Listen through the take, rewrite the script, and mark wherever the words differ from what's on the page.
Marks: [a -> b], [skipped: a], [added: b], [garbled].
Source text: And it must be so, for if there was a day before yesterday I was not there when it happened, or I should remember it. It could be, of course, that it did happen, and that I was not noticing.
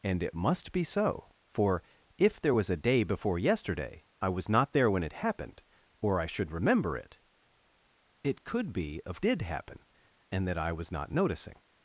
And it must be so, for if there was a day before yesterday I was not there when it happened, or I should remember it. It could be, of [skipped: course, that it] did happen, and that I was not noticing.